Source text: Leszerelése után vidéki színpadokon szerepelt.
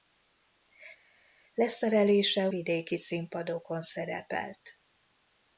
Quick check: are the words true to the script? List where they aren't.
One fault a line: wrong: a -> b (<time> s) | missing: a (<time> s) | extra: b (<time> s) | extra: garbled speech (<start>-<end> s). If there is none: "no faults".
missing: után (2.5 s)